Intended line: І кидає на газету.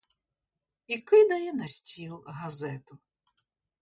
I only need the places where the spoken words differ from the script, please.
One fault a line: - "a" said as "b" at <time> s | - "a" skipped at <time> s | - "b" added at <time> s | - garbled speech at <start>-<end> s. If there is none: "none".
- "стіл" added at 1.7 s